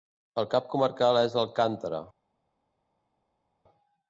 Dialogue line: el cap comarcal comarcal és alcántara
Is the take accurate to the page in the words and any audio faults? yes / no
no